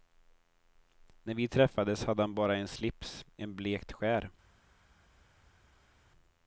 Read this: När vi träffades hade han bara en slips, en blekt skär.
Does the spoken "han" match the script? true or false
true